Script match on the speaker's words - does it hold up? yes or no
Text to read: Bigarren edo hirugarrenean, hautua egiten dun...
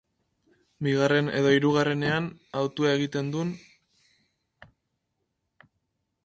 yes